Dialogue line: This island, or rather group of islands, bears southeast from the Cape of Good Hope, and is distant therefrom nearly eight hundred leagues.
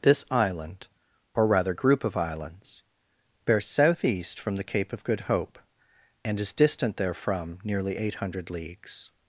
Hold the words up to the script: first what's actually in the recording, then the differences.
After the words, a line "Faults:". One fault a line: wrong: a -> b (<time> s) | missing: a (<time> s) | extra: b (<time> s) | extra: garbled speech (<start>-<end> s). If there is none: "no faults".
This island, or rather group of islands, bears southeast from the Cape of Good Hope, and is distant therefrom nearly eight hundred leagues.
Faults:
no faults